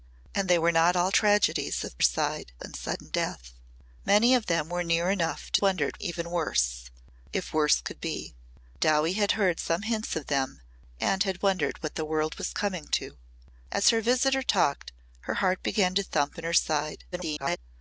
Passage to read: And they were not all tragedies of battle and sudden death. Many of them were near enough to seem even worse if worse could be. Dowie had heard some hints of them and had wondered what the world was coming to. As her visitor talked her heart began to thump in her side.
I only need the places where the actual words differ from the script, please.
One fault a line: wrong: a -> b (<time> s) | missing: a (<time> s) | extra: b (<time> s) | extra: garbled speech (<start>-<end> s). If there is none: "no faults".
wrong: battle -> side (2.0 s)
wrong: seem -> wondered (5.6 s)
extra: garbled speech (17.1-17.6 s)